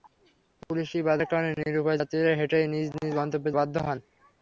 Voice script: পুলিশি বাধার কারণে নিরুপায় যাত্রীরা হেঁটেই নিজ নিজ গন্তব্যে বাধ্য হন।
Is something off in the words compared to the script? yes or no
no